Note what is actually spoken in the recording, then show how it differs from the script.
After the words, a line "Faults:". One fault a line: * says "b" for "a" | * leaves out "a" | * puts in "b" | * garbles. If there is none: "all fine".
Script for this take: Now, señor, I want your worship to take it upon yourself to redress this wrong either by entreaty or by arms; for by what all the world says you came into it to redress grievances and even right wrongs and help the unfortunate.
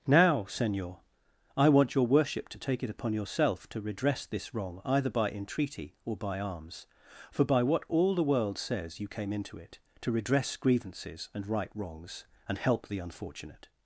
Now, señor, I want your worship to take it upon yourself to redress this wrong either by entreaty or by arms; for by what all the world says you came into it to redress grievances and right wrongs and help the unfortunate.
Faults:
* leaves out "even"